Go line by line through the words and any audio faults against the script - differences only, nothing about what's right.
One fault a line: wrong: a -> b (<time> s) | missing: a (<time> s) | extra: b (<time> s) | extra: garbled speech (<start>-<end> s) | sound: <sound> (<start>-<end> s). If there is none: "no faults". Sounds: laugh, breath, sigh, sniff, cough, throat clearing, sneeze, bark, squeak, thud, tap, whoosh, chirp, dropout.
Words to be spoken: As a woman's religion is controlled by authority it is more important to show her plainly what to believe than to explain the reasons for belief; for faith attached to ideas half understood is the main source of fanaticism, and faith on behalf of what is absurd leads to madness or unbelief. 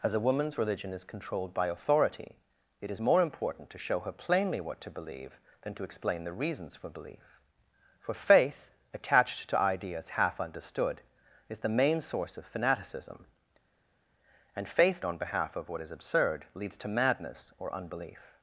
no faults